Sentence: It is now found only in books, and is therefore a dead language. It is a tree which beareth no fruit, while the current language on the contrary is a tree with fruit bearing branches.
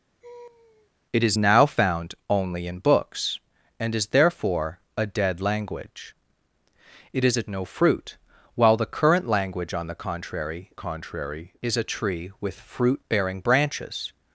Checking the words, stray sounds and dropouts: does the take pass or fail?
fail